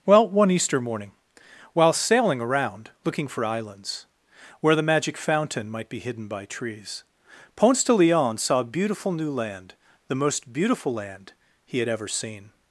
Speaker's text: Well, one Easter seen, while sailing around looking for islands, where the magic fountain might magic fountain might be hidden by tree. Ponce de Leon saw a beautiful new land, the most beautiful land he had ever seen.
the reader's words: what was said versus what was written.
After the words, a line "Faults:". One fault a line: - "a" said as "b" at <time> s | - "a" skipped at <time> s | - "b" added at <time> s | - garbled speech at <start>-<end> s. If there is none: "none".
Well, one Easter morning, while sailing around looking for islands, where the magic fountain might be hidden by trees. Ponce de Leon saw a beautiful new land, the most beautiful land he had ever seen.
Faults:
- "seen" said as "morning" at 0.8 s
- "magic fountain might" skipped at 5.9 s
- "tree" said as "trees" at 6.5 s